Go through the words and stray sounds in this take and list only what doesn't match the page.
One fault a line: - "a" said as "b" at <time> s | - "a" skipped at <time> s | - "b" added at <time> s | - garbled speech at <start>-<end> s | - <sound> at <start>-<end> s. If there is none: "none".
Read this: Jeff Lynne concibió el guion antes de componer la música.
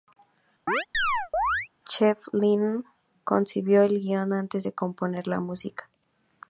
- chirp at 0.7-1.7 s